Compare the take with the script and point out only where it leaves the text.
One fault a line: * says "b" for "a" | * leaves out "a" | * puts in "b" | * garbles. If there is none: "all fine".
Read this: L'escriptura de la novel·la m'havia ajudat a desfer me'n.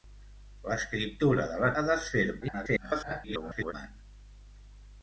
* leaves out "novel·la m'havia ajudat"
* garbles